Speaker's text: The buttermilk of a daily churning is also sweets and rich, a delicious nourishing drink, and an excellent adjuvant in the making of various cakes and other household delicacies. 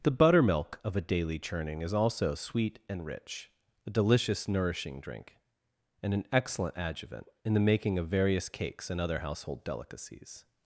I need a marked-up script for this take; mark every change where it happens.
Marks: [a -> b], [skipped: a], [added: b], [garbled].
The buttermilk of a daily churning is also [sweets -> sweet] and rich, a delicious nourishing drink, and an excellent adjuvant in the making of various cakes and other household delicacies.